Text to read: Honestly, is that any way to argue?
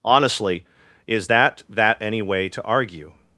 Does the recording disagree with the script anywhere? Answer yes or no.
yes